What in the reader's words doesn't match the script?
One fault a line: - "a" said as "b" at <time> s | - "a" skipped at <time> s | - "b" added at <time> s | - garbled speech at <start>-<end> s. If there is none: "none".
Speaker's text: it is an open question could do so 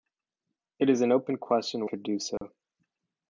none